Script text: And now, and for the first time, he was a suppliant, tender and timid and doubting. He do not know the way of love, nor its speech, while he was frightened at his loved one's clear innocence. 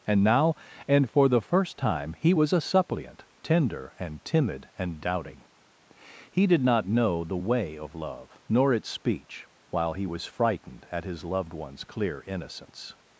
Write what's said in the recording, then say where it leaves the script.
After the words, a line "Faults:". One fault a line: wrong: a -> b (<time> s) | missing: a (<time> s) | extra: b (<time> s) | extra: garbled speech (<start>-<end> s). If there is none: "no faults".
And now, and for the first time, he was a suppliant, tender and timid and doubting. He did not know the way of love, nor its speech, while he was frightened at his loved one's clear innocence.
Faults:
wrong: do -> did (6.5 s)